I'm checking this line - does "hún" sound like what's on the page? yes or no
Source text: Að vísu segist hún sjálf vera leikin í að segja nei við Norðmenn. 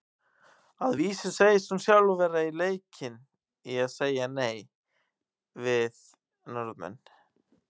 yes